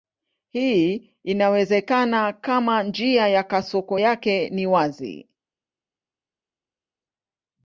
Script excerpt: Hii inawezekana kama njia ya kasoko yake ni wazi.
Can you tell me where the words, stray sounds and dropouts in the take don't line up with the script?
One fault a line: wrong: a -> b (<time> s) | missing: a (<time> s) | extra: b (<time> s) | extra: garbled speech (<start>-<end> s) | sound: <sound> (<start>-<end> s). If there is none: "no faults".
no faults